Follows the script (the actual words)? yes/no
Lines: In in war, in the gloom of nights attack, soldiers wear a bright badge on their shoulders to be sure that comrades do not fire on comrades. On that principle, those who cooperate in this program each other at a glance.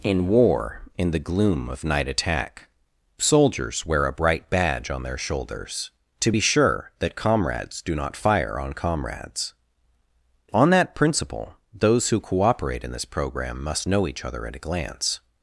no